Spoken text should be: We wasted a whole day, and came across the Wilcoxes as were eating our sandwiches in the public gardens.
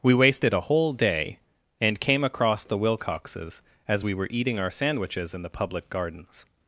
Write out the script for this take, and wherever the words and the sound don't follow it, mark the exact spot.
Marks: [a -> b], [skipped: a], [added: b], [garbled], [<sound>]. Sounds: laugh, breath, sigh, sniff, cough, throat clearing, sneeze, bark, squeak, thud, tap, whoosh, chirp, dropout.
We wasted a whole day, and came across the Wilcoxes as [added: we] were eating our sandwiches in the public gardens.